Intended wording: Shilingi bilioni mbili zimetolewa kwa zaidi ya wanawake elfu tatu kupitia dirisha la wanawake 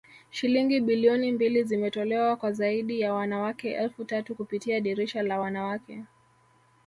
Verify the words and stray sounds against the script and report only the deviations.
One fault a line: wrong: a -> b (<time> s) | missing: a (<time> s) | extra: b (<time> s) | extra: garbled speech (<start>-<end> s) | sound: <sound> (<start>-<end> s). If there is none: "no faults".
no faults